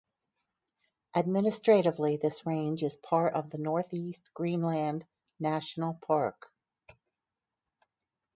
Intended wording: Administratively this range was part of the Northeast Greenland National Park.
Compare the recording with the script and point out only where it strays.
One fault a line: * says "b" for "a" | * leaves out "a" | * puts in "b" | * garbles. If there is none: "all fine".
* says "is" for "was"